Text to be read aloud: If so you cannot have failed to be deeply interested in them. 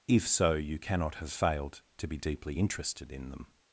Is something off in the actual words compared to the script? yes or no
no